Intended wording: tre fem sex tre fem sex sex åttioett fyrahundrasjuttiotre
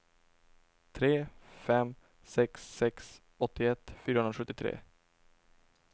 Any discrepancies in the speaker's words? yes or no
yes